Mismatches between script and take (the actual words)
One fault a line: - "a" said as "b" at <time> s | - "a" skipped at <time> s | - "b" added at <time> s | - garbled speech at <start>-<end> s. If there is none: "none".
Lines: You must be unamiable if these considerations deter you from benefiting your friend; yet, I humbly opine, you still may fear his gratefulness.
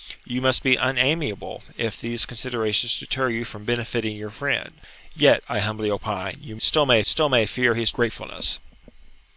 - "still may" added at 7.0 s